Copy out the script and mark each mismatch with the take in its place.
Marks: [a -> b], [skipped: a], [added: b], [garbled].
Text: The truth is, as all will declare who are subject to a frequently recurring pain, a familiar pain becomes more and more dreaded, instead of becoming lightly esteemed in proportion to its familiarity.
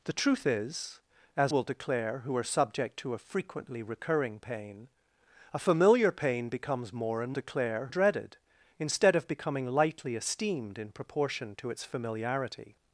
The truth is, as [skipped: all] will declare who are subject to a frequently recurring pain, a familiar pain becomes more and [more -> declare] dreaded, instead of becoming lightly esteemed in proportion to its familiarity.